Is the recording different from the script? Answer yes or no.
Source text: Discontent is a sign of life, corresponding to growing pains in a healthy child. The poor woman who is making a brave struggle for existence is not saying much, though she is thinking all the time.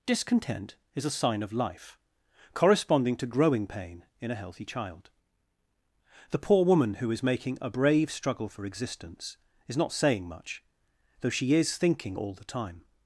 yes